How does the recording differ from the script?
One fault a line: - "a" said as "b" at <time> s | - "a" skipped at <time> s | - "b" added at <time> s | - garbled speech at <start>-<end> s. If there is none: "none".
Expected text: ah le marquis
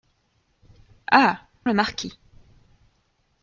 none